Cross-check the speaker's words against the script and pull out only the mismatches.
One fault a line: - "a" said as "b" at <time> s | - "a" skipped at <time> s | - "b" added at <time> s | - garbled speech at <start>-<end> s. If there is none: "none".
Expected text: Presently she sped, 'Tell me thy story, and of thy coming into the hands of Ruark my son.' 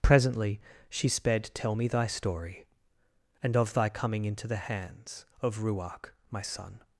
none